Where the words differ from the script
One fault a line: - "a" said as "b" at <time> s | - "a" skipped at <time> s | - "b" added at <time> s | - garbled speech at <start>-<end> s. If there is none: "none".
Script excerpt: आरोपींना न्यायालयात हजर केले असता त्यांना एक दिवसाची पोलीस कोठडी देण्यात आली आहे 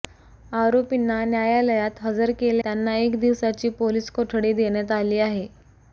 - "असता" skipped at 2.6 s